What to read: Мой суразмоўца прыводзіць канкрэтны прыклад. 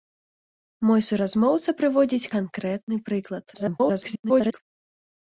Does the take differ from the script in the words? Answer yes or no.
yes